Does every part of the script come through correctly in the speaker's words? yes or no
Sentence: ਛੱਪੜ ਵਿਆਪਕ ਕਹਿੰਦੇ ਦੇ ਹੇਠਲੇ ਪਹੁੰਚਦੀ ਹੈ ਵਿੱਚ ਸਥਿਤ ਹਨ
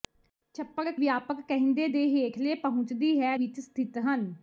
yes